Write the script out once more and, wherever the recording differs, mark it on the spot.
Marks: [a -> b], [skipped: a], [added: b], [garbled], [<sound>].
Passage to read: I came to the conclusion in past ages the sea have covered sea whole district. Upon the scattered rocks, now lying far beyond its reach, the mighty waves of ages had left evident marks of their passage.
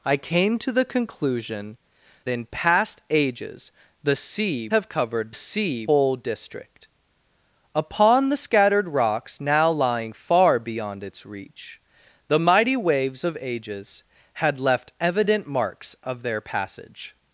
I came to the conclusion in past ages the sea have covered sea whole district. Upon the scattered rocks, now lying far beyond its reach, the mighty waves of ages had left evident marks of their passage.